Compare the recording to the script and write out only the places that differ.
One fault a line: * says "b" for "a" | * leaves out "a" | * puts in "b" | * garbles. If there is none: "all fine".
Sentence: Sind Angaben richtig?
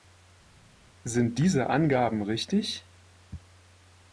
* puts in "diese"